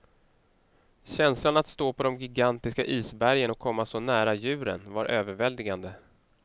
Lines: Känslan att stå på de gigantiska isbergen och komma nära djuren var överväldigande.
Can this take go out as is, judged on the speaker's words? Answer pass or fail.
fail